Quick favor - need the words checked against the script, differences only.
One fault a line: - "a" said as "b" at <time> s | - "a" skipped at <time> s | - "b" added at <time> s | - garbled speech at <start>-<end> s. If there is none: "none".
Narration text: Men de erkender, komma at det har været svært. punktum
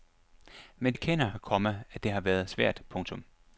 - "de" skipped at 0.9 s